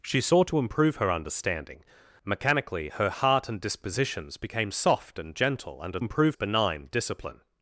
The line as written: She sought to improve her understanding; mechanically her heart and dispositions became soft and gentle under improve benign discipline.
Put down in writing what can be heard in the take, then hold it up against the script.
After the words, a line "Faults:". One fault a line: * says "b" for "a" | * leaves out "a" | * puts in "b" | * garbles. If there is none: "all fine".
She sought to improve her understanding; mechanically her heart and dispositions became soft and gentle under improve benign discipline.
Faults:
all fine